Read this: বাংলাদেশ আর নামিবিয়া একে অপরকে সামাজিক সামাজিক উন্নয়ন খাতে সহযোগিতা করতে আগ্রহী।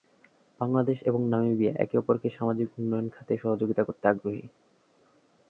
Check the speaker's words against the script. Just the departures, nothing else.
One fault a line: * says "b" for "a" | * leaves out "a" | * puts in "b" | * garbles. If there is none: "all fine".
* says "এবং" for "আর"
* leaves out "সামাজিক"